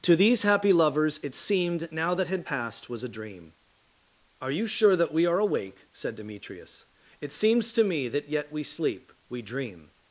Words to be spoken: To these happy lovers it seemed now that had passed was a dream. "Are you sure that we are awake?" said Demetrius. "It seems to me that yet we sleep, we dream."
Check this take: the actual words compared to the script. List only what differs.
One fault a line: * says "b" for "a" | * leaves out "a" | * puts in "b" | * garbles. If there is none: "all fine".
all fine